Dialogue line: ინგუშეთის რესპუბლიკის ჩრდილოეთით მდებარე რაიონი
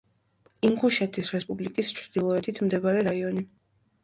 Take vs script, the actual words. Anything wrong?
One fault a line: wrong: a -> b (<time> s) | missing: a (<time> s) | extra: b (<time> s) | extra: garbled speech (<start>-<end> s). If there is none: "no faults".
no faults